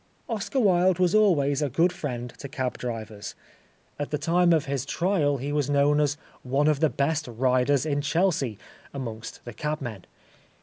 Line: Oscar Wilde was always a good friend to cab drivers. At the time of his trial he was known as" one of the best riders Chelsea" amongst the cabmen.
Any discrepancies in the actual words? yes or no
yes